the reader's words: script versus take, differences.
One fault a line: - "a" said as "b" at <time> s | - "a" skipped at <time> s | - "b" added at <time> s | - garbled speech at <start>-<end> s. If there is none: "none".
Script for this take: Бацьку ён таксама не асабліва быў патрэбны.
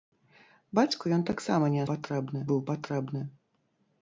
- "асабліва" said as "патрэбны" at 1.9 s